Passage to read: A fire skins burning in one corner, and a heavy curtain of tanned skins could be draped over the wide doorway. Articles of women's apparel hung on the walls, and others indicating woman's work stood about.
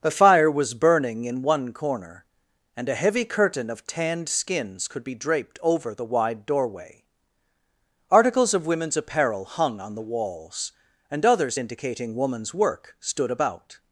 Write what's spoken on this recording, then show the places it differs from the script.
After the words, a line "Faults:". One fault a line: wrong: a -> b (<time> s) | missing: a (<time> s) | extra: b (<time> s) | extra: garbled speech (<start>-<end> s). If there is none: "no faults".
A fire was burning in one corner, and a heavy curtain of tanned skins could be draped over the wide doorway. Articles of women's apparel hung on the walls, and others indicating woman's work stood about.
Faults:
wrong: skins -> was (0.5 s)